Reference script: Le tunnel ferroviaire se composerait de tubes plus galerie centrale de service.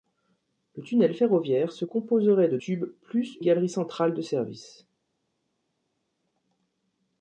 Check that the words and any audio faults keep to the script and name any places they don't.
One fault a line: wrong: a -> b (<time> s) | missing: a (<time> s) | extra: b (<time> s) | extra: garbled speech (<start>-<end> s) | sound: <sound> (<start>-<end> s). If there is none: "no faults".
no faults